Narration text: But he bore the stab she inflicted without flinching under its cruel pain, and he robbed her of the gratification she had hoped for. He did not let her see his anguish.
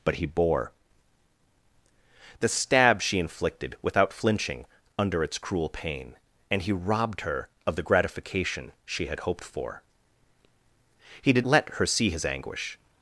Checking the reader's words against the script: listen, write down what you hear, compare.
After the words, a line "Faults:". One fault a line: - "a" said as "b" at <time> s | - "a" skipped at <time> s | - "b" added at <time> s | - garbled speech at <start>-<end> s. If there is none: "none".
But he bore the stab she inflicted without flinching under its cruel pain, and he robbed her of the gratification she had hoped for. He did let her see his anguish.
Faults:
- "not" skipped at 11.4 s